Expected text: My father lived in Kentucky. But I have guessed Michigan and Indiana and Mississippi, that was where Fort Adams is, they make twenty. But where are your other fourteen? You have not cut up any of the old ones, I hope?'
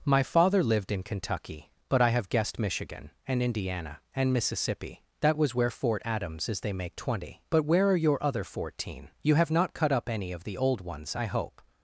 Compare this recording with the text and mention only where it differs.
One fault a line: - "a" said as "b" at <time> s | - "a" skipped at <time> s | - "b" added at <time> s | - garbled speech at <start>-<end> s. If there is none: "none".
none